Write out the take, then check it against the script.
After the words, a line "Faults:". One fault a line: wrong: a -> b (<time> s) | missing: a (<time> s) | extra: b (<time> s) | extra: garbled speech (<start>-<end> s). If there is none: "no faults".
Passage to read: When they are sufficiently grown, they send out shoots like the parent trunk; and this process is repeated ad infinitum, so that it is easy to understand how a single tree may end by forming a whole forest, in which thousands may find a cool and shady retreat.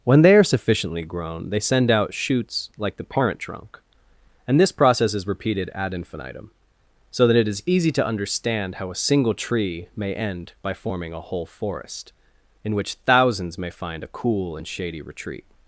When they are sufficiently grown, they send out shoots like the parent trunk; and this process is repeated ad infinitum, so that it is easy to understand how a single tree may end by forming a whole forest, in which thousands may find a cool and shady retreat.
Faults:
no faults